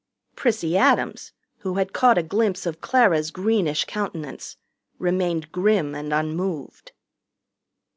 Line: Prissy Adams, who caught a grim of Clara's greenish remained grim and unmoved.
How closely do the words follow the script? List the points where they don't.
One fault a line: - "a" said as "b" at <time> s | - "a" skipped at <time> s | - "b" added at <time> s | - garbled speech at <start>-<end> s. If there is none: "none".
- "had" added at 1.8 s
- "grim" said as "glimpse" at 2.2 s
- "countenance" added at 3.8 s